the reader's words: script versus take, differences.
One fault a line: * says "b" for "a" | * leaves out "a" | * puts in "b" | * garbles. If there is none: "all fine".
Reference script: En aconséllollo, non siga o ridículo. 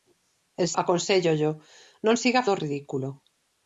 all fine